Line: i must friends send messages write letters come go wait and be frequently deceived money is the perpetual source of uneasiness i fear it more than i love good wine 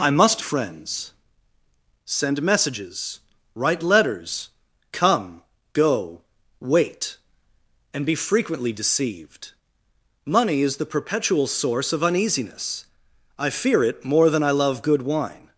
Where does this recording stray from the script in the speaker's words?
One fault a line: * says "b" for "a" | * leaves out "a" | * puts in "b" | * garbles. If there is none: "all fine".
all fine